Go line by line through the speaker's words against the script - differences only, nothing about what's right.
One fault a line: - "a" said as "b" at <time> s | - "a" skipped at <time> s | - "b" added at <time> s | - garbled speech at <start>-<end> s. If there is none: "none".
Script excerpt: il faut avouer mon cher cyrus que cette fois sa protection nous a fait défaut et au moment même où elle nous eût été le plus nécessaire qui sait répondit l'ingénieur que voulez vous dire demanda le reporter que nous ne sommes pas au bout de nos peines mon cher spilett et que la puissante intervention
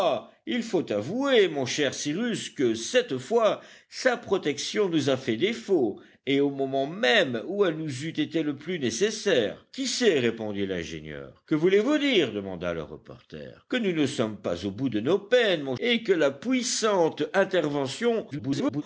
- "cher spilett" skipped at 15.8 s
- garbled speech at 18.3-18.8 s